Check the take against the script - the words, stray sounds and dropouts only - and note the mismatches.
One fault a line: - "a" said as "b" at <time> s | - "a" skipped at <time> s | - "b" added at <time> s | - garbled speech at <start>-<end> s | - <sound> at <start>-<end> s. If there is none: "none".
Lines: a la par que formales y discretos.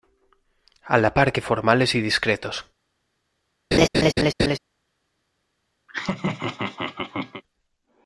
- laugh at 3.7-4.6 s
- laugh at 5.9-7.4 s